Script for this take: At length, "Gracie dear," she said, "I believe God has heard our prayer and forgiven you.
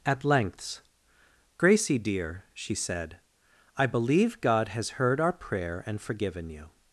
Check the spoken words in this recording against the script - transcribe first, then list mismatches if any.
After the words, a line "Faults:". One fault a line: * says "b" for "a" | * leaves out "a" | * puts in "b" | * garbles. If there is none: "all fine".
At lengths, "Gracie dear," she said, "I believe God has heard our prayer and forgiven you.
Faults:
* says "lengths" for "length"